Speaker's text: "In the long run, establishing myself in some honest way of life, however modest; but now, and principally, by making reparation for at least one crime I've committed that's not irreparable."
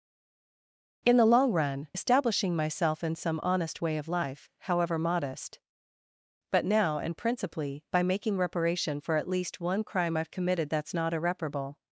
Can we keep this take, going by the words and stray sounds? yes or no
yes